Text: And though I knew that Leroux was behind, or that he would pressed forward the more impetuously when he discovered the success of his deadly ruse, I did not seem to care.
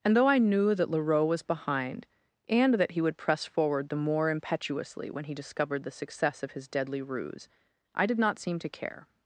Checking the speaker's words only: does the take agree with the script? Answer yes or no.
no